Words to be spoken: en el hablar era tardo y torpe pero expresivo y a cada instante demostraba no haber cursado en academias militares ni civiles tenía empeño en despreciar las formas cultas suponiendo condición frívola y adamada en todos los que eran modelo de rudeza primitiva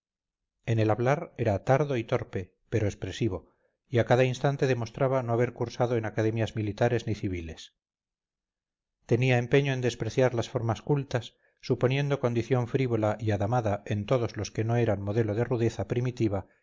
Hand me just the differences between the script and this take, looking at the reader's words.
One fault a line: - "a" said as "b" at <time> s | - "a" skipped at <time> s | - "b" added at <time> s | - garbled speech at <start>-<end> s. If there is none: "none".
- "no" added at 14.6 s